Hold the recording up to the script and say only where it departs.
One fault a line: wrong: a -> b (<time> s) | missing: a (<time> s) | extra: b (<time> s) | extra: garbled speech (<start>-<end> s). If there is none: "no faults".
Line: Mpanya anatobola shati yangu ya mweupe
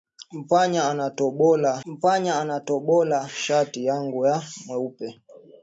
extra: mpanya anatobola (1.8 s)